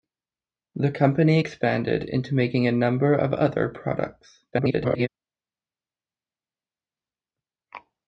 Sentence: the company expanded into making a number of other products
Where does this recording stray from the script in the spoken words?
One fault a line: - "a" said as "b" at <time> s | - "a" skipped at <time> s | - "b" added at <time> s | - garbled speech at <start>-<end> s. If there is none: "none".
- garbled speech at 4.5-5.1 s